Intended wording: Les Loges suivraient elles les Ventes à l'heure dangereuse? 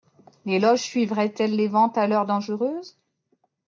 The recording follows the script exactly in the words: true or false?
true